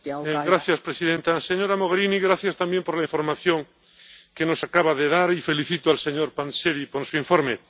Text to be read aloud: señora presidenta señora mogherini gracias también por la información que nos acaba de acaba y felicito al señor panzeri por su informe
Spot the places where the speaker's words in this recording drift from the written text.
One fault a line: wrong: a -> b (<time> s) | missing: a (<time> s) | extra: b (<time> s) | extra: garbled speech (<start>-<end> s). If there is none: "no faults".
wrong: acaba -> dar (5.1 s)